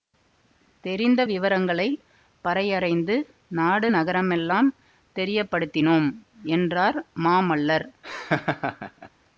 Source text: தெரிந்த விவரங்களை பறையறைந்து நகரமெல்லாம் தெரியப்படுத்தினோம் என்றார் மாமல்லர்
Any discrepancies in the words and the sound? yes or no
yes